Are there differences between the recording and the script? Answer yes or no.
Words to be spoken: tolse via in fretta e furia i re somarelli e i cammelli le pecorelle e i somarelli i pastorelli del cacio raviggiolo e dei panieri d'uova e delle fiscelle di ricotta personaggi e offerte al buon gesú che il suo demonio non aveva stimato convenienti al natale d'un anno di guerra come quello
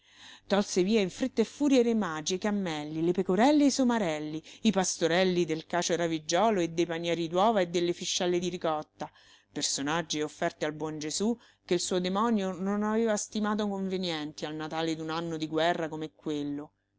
yes